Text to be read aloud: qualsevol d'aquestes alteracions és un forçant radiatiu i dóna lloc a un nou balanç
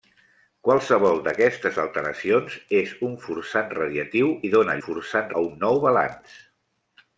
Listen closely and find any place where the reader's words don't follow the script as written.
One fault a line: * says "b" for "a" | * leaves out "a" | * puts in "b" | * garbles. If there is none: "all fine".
* says "forçant" for "lloc"